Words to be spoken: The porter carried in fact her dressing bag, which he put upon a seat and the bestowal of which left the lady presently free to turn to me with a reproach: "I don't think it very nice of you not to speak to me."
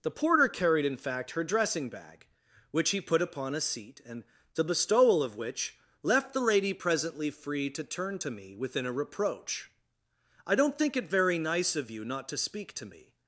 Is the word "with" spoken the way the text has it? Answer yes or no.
no